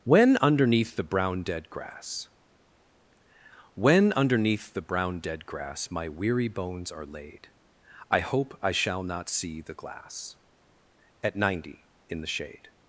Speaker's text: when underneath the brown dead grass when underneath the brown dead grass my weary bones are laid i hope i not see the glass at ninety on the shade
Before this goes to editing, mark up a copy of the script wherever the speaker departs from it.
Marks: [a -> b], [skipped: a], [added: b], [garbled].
when underneath the brown dead grass when underneath the brown dead grass my weary bones are laid i hope i [added: shall] not see the glass at ninety [on -> in] the shade